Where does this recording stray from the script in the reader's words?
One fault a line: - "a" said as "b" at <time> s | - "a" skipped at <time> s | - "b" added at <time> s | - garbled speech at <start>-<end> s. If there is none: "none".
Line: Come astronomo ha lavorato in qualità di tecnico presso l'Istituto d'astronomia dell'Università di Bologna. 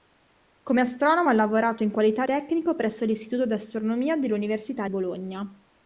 - "di" skipped at 2.3 s
- "di" skipped at 4.9 s